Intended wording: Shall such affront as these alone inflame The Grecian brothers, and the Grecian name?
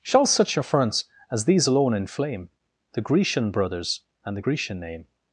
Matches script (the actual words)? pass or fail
fail